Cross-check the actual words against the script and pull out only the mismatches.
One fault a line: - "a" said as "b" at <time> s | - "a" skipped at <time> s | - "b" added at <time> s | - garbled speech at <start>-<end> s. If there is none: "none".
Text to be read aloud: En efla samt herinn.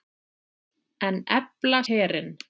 - "samt" skipped at 1.8 s